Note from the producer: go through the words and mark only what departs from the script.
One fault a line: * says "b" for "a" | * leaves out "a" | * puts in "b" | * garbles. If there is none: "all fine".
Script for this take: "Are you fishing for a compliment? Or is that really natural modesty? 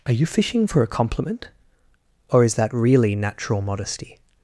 all fine